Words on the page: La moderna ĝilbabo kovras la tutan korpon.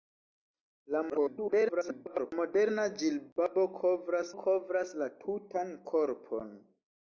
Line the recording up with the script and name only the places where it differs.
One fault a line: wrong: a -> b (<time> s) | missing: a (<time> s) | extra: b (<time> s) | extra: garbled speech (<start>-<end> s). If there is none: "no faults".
extra: garbled speech (1.1-2.3 s)
extra: kovras (4.4 s)